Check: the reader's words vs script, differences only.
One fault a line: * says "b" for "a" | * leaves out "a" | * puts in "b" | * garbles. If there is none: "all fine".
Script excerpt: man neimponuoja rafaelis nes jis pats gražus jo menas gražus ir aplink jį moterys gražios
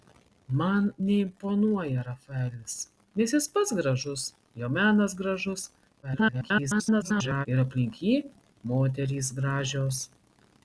* garbles